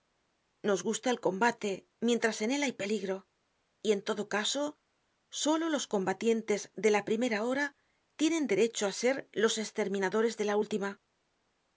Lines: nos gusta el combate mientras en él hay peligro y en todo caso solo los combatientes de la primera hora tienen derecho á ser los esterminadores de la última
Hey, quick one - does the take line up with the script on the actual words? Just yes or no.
yes